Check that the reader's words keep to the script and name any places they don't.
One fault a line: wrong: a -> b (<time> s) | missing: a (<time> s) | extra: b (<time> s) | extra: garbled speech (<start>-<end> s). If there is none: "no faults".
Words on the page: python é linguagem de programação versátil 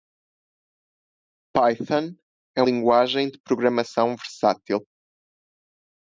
no faults